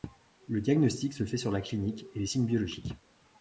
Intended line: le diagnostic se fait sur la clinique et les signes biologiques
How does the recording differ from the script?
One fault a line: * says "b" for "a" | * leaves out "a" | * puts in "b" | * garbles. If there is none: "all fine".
all fine